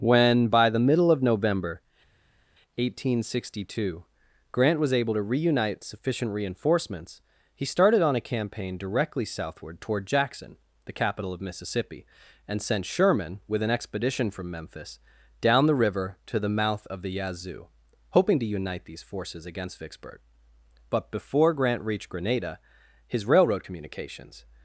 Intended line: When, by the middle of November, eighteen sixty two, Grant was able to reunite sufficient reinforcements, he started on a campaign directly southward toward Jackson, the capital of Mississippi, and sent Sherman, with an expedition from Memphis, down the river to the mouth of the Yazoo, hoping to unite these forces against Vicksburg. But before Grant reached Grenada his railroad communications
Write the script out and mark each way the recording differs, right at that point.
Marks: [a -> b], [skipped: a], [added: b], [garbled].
When, by the middle of November, eighteen sixty two, Grant was able to reunite sufficient reinforcements, he started on a campaign directly southward toward Jackson, the capital of Mississippi, and sent Sherman, with an expedition from Memphis, down the river to the mouth of the Yazoo, hoping to unite these forces against Vicksburg. But before Grant reached Grenada his railroad communications